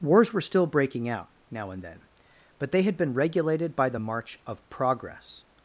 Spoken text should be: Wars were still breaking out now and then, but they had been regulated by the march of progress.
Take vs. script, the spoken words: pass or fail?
pass